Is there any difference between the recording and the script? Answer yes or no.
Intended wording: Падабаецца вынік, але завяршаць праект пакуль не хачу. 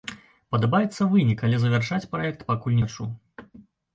yes